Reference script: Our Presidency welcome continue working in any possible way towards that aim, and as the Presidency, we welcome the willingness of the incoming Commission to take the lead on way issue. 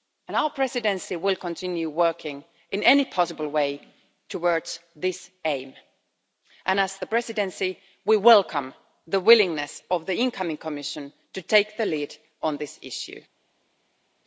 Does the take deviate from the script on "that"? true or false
true